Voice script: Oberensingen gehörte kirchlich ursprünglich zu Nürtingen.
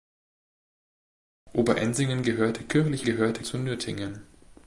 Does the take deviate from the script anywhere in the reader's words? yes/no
yes